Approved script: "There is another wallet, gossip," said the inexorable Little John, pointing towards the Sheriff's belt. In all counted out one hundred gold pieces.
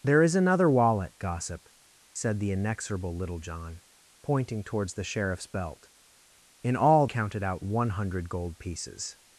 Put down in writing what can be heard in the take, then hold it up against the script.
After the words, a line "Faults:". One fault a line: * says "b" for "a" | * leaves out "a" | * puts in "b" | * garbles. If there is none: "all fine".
"There is another wallet, gossip," said the inexorable Little John, pointing towards the Sheriff's belt. In all counted out one hundred gold pieces.
Faults:
all fine